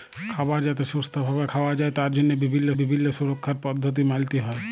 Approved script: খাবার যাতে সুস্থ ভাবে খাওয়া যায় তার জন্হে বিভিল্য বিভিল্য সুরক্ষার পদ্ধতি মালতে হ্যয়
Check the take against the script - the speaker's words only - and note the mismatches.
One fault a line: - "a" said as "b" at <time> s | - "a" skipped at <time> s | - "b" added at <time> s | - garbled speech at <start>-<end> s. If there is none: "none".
none